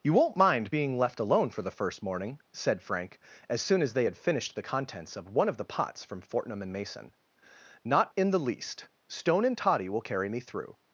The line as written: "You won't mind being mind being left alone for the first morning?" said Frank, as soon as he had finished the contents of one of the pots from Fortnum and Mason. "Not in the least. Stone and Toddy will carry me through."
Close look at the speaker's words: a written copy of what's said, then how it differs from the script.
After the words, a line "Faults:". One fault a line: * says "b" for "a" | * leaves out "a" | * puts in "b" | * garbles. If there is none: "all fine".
"You won't mind being left alone for the first morning?" said Frank, as soon as they had finished the contents of one of the pots from Fortnum and Mason. "Not in the least. Stone and Toddy will carry me through."
Faults:
* leaves out "mind being"
* says "they" for "he"